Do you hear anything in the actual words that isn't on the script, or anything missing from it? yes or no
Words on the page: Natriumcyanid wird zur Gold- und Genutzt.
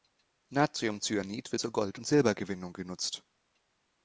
yes